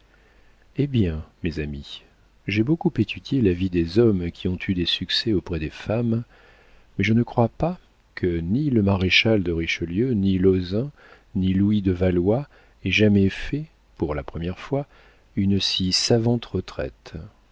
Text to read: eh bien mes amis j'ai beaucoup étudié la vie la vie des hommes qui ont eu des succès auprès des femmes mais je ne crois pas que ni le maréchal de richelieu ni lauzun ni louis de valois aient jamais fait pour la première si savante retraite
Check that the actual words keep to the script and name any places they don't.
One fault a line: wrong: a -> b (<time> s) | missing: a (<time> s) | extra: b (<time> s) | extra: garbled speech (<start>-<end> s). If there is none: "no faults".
missing: la vie (3.7 s)
extra: fois une (14.6 s)